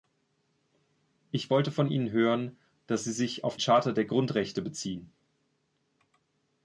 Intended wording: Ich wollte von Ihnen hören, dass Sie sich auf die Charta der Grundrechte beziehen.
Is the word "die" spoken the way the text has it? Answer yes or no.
no